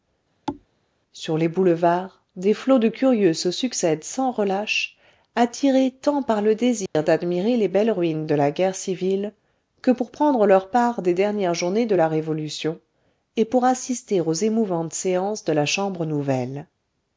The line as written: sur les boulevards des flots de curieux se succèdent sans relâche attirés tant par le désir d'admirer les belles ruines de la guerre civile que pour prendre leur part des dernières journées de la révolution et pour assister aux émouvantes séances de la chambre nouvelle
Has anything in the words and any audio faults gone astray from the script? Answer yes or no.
yes